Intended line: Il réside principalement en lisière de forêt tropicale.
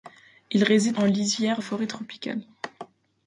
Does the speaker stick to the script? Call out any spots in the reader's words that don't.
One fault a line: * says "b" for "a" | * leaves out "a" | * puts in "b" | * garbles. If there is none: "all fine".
* leaves out "principalement"
* leaves out "de"